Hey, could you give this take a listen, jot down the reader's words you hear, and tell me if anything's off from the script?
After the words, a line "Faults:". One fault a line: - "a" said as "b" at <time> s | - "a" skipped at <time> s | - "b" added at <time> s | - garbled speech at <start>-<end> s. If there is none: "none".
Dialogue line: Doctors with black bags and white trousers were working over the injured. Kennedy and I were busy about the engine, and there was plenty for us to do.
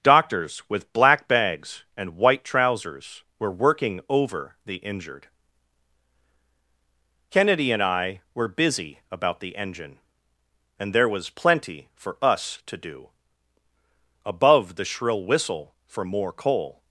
Doctors with black bags and white trousers were working over the injured. Kennedy and I were busy about the engine, and there was plenty for us to do. Above the shrill whistle for more coal
Faults:
- "Above the shrill whistle for more coal" added at 14.2 s